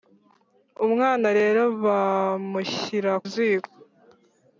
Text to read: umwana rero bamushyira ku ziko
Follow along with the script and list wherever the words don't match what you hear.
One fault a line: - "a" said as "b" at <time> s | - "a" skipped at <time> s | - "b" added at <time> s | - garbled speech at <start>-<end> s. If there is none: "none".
- "ku" skipped at 3.1 s